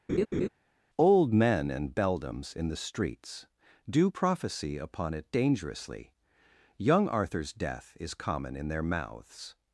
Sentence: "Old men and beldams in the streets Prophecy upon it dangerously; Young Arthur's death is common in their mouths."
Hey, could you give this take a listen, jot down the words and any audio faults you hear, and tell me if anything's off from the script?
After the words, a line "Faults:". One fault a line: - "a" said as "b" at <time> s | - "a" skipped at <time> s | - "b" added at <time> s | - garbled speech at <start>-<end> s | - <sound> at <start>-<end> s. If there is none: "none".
"Old men and beldams in the streets Do prophecy upon it dangerously; Young Arthur's death is common in their mouths."
Faults:
- laugh at 0.1-0.5 s
- "Do" added at 3.9 s